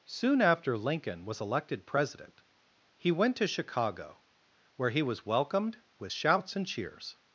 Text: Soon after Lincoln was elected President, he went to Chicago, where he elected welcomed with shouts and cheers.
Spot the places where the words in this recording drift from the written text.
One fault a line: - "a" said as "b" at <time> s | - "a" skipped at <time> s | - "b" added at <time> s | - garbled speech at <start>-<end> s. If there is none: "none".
- "elected" said as "was" at 5.0 s